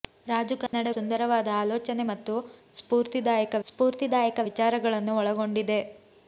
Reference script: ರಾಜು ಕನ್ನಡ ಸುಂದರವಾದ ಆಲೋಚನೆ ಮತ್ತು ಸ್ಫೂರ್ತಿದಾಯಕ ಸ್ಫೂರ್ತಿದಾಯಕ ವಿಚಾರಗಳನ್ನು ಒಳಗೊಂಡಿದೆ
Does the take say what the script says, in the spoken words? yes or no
yes